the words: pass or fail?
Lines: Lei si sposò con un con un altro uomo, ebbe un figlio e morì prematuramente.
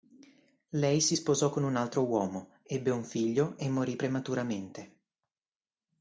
fail